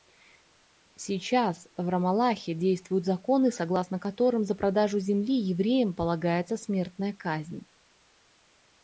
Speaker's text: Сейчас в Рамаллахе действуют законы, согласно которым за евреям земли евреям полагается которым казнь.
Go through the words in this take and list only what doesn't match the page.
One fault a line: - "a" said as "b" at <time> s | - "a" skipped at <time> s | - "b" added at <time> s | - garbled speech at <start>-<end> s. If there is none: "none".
- "евреям" said as "продажу" at 4.5 s
- "которым" said as "смертная" at 6.6 s